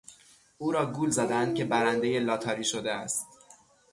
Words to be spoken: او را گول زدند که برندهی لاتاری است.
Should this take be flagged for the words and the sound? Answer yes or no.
yes